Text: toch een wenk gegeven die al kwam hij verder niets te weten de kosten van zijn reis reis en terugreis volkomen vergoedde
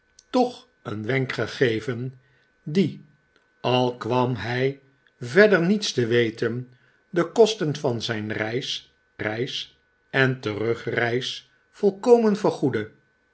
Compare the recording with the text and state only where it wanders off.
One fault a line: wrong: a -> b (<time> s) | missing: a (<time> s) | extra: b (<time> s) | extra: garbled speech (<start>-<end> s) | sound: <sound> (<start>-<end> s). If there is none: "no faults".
no faults